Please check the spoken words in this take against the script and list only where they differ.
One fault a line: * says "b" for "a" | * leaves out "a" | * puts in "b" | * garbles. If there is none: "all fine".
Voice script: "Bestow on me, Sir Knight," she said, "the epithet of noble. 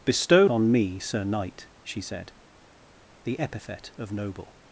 all fine